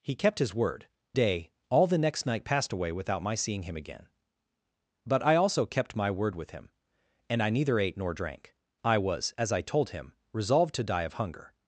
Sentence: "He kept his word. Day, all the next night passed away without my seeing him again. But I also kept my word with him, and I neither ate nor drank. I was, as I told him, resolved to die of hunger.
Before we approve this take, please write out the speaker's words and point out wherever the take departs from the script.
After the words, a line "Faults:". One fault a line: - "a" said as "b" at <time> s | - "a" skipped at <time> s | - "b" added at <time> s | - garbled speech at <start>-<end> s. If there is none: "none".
"He kept his word. Day, all the next night passed away without my seeing him again. But I also kept my word with him, and I neither ate nor drank. I was, as I told him, resolved to die of hunger.
Faults:
none